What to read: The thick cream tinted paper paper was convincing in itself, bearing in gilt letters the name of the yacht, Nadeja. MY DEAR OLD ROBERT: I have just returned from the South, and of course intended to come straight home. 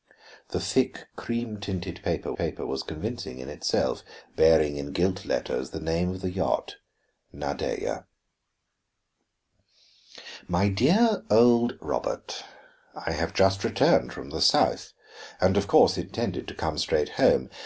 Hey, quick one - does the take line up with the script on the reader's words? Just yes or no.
yes